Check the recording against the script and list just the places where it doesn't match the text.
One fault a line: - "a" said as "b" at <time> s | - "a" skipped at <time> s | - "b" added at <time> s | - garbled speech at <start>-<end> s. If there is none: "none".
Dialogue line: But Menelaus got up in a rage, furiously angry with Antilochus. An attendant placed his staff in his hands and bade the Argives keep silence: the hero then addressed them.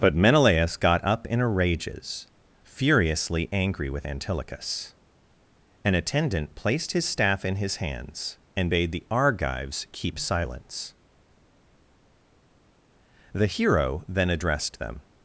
- "rage" said as "rages" at 1.5 s